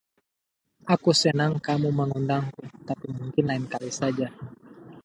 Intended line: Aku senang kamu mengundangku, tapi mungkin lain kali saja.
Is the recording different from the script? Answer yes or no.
no